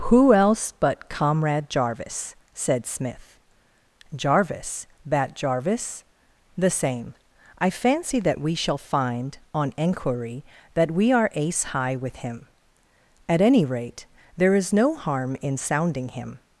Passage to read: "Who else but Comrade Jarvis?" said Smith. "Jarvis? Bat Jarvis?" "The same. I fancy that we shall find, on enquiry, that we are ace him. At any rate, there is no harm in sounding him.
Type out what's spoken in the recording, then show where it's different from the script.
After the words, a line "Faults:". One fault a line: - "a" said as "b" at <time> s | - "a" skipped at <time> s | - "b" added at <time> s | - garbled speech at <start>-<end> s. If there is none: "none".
"Who else but Comrade Jarvis?" said Smith. "Jarvis? Bat Jarvis?" "The same. I fancy that we shall find, on enquiry, that we are ace high with him. At any rate, there is no harm in sounding him.
Faults:
- "high with" added at 11.6 s